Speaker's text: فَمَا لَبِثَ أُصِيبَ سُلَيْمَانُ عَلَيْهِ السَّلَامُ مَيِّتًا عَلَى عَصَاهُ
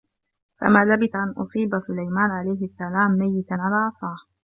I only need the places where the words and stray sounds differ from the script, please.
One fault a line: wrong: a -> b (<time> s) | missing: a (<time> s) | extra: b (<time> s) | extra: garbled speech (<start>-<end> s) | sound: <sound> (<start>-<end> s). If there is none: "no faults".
extra: أَنْ (1.1 s)